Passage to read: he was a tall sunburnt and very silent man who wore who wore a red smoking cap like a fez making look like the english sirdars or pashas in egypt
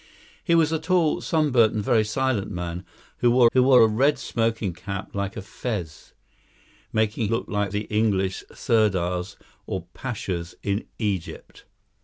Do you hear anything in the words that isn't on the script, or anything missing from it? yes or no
no